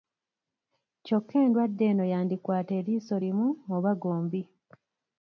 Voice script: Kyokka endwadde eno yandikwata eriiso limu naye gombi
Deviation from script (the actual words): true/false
true